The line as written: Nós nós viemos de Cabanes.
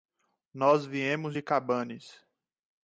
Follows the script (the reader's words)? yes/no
no